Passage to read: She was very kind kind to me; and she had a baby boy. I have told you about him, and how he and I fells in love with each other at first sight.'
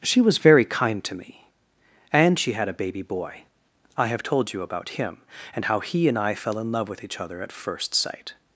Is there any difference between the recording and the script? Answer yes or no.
yes